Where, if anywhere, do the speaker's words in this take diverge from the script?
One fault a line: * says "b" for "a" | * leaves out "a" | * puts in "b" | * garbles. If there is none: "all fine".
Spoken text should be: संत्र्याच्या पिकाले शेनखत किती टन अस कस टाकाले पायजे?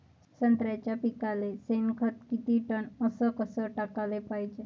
all fine